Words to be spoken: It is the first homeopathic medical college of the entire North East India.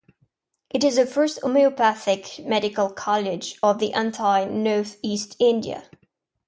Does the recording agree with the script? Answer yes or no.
yes